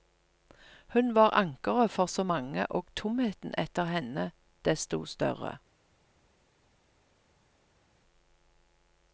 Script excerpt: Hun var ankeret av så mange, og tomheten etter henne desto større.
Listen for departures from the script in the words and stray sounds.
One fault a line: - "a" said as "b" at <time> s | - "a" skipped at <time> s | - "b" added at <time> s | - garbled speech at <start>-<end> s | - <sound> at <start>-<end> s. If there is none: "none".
- "av" said as "for" at 1.9 s